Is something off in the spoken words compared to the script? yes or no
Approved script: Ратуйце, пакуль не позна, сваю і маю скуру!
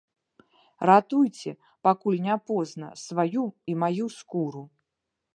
no